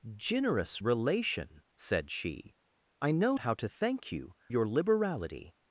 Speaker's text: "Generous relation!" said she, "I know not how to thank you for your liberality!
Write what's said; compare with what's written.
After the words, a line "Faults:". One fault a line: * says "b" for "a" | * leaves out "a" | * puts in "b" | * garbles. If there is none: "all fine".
"Generous relation!" said she, "I know how to thank you your liberality!
Faults:
* leaves out "not"
* leaves out "for"